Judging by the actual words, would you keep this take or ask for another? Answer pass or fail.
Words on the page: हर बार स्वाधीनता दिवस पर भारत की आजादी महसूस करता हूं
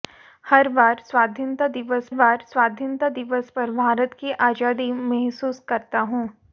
fail